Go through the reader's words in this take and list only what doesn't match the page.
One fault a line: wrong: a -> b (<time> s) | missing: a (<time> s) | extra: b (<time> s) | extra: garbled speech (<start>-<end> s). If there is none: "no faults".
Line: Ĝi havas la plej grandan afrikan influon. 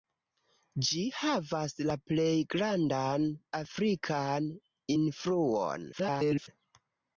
extra: garbled speech (5.9-6.5 s)